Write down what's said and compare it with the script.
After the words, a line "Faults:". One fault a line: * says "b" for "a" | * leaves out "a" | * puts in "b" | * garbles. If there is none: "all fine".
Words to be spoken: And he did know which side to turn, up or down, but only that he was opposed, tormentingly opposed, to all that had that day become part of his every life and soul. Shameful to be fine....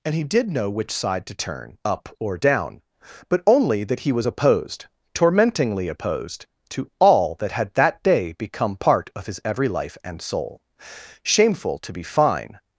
And he did know which side to turn, up or down, but only that he was opposed, tormentingly opposed, to all that had that day become part of his every life and soul. Shameful to be fine....
Faults:
all fine